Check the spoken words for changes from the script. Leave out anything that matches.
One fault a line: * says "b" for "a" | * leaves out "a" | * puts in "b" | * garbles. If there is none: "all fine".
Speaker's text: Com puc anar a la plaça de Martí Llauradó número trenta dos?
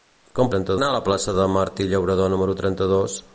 * says "trenta" for "puc"